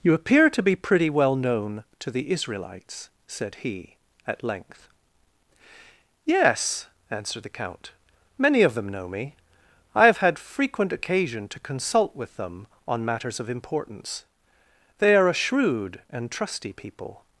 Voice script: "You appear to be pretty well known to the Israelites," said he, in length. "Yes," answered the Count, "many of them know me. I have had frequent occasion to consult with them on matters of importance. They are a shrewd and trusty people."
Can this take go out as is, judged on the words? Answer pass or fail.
fail